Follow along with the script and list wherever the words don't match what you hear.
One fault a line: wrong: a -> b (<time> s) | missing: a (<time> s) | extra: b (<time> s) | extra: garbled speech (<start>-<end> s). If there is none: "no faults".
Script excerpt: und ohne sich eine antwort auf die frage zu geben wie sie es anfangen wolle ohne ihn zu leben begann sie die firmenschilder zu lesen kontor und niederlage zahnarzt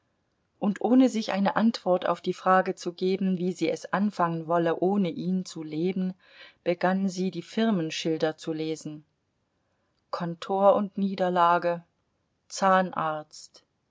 no faults